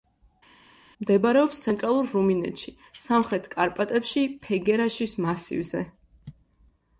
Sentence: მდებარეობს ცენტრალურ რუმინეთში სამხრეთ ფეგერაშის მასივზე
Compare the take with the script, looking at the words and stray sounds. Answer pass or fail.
fail